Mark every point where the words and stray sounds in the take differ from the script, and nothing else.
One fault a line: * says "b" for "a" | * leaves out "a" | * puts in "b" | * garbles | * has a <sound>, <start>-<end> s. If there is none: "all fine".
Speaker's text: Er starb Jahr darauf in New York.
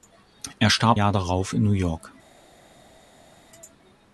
all fine